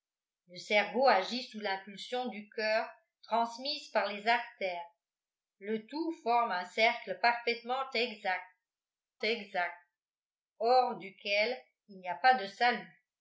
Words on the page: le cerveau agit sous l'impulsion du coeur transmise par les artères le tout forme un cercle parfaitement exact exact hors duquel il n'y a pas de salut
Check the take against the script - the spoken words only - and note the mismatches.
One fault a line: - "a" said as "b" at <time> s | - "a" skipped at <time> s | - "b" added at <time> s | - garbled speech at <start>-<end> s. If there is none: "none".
none